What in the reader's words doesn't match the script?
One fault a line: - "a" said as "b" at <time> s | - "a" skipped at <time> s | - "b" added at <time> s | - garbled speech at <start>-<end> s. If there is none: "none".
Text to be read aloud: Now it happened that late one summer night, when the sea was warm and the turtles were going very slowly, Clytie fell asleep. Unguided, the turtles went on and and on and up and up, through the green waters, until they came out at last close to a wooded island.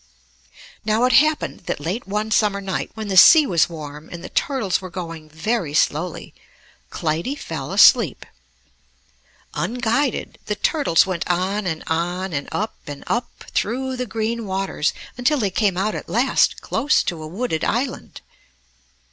- "and" skipped at 11.8 s